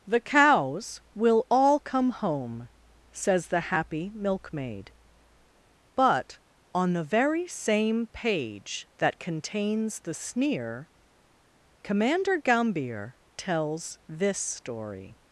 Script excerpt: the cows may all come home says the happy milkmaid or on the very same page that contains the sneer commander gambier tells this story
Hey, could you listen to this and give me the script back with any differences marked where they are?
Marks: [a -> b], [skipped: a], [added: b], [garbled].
the cows [may -> will] all come home says the happy milkmaid [or -> but] on the very same page that contains the sneer commander gambier tells this story